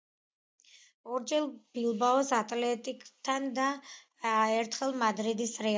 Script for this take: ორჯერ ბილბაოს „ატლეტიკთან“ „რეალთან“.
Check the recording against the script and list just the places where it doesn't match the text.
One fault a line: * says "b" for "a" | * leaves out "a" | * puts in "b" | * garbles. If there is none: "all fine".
* puts in "და ერთხელ მადრიდის"